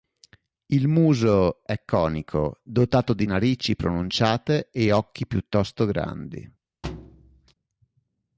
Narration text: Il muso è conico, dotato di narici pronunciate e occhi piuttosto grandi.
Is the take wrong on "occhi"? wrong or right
right